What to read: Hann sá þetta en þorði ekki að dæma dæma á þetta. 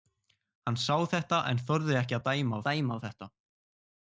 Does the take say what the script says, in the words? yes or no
yes